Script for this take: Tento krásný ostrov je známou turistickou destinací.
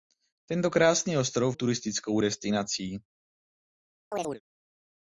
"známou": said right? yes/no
no